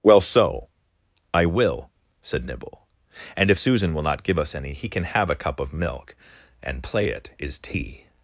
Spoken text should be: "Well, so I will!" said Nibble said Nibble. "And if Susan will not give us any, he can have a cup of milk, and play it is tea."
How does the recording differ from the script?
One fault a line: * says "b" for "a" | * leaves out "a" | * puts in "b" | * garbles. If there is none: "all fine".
* leaves out "said Nibble"